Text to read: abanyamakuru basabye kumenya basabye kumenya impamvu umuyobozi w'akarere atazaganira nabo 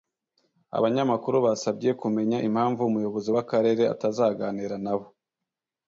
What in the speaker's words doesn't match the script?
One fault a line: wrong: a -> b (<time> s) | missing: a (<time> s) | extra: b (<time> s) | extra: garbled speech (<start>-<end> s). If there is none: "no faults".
missing: basabye kumenya (2.4 s)